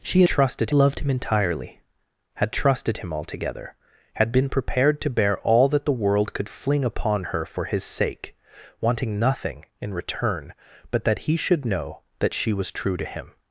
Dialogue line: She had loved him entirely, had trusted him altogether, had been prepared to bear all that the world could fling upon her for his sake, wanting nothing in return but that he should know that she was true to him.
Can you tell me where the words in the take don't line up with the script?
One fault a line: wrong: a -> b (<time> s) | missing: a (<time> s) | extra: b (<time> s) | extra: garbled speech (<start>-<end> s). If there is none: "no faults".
wrong: had -> trusted (0.2 s)